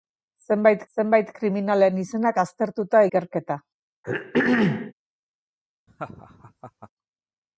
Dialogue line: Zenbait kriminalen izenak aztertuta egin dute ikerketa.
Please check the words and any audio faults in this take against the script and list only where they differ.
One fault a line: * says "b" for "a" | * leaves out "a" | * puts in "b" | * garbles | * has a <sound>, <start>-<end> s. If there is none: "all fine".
* puts in "zenbait"
* leaves out "egin dute"
* has a throat clearing, 4.0-4.9 s
* has a laugh, 5.9-6.9 s